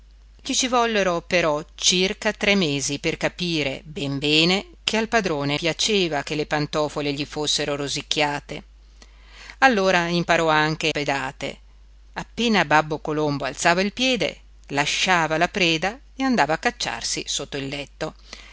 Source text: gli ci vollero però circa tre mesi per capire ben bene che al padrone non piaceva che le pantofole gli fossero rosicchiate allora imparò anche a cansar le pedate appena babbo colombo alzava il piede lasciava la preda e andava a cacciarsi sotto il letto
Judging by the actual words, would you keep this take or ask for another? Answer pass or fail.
fail